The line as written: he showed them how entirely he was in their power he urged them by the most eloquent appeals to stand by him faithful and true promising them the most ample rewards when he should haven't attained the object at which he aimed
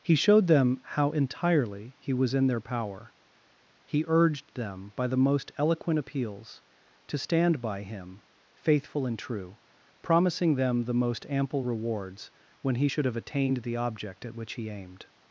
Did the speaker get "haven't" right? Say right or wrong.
wrong